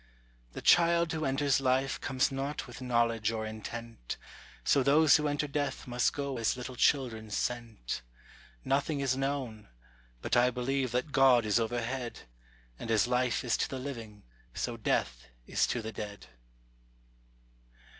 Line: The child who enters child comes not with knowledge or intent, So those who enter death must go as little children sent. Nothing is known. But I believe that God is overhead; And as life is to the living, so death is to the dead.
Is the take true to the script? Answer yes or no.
no